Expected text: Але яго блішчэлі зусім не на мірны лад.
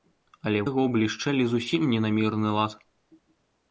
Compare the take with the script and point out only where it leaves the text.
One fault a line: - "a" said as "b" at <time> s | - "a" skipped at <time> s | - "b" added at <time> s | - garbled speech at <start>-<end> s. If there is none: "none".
none